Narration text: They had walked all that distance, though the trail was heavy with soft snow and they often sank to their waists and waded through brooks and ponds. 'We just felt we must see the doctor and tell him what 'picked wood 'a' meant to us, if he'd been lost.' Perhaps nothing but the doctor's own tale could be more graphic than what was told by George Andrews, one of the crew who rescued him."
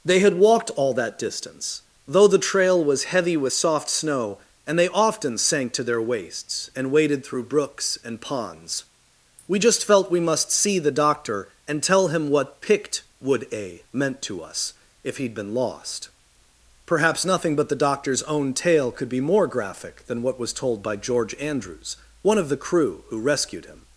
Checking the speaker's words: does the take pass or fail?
pass